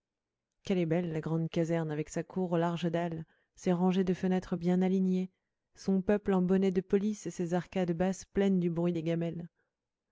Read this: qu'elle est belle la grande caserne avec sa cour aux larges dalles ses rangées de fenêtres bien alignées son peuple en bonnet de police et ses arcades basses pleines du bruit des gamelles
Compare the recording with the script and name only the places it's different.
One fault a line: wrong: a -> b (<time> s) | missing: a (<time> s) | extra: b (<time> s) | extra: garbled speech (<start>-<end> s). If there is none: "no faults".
no faults